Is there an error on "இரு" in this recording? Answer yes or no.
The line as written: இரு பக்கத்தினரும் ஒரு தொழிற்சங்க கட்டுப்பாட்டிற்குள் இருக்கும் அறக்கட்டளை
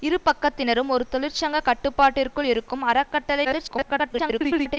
no